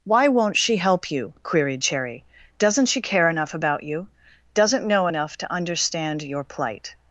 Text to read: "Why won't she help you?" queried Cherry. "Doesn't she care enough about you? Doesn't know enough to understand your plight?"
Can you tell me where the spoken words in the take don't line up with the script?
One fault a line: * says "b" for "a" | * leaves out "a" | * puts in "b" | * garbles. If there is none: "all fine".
all fine